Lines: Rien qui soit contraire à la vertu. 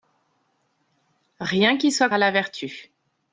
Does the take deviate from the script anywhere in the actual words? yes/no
yes